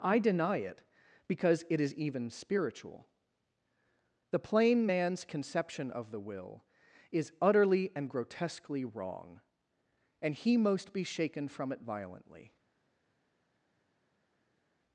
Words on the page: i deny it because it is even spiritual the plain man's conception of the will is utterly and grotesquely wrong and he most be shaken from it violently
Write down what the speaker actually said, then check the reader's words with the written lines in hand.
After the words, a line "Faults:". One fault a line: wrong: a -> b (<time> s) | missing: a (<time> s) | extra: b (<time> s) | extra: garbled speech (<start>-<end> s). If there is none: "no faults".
i deny it because it is even spiritual the plain man's conception of the will is utterly and grotesquely wrong and he most be shaken from it violently
Faults:
no faults